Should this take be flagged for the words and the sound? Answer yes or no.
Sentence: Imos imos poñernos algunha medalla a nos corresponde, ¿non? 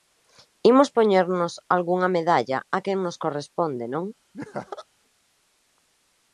yes